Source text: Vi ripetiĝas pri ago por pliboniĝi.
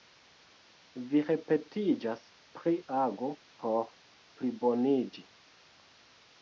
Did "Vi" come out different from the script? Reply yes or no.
no